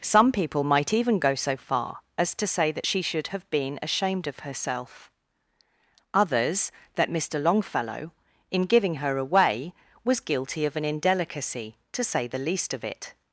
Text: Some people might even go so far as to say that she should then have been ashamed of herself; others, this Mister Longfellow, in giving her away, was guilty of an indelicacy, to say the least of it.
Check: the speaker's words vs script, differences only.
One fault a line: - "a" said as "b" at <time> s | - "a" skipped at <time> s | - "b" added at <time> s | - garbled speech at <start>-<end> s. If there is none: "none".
- "then" skipped at 3.3 s
- "this" said as "that" at 6.9 s